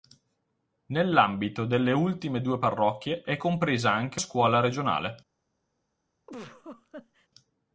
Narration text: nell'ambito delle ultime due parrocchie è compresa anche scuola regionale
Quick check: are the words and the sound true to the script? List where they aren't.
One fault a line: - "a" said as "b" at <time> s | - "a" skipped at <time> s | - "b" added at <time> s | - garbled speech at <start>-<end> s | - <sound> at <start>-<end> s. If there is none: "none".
- laugh at 6.3-7.3 s